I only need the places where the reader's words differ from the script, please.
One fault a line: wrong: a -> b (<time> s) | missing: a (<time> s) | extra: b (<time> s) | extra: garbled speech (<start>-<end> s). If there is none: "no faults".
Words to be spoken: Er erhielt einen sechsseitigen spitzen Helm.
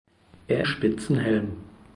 missing: erhielt einen sechsseitigen (0.7 s)